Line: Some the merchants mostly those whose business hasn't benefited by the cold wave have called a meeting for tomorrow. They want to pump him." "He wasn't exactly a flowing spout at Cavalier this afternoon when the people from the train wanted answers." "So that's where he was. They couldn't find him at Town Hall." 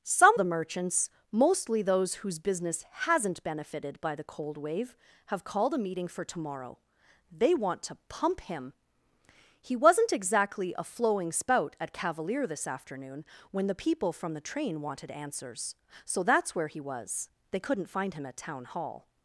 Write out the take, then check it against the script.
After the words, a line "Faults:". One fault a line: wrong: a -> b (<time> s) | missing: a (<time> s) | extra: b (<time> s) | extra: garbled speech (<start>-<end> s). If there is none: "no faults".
Some the merchants mostly those whose business hasn't benefited by the cold wave have called a meeting for tomorrow. They want to pump him." "He wasn't exactly a flowing spout at Cavalier this afternoon when the people from the train wanted answers." "So that's where he was. They couldn't find him at Town Hall."
Faults:
no faults